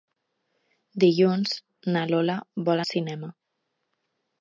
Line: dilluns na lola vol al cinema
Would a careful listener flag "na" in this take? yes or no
no